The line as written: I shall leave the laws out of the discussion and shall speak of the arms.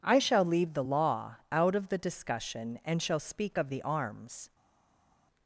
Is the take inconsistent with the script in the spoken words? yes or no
yes